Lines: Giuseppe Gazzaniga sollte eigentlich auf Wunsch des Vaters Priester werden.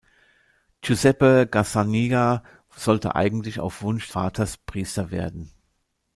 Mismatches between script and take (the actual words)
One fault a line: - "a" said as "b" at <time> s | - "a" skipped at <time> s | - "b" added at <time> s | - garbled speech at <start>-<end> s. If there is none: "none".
- "des" skipped at 4.1 s